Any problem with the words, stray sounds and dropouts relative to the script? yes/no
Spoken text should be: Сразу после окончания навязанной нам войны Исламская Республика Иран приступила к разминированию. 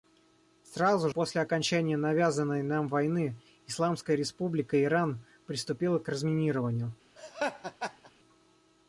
yes